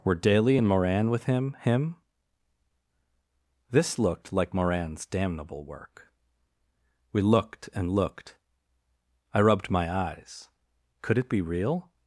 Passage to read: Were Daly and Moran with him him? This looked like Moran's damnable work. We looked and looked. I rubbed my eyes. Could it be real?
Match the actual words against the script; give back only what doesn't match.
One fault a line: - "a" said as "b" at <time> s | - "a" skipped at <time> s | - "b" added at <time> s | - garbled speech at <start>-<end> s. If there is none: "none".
none